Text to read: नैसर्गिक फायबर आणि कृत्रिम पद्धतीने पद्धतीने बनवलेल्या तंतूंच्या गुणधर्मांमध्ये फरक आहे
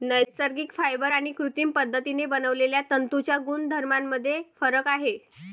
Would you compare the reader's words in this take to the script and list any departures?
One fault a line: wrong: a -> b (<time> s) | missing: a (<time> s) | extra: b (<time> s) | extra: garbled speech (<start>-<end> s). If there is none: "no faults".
missing: पद्धतीने (2.3 s)